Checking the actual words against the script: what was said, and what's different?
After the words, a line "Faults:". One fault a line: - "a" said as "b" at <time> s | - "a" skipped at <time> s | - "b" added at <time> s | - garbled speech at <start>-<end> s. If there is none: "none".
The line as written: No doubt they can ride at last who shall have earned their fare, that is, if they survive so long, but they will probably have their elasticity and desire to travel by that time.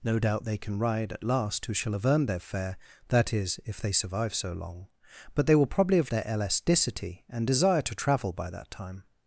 No doubt they can ride at last who shall have earned their fare, that is, if they survive so long, but they will probably have their elasticity and desire to travel by that time.
Faults:
none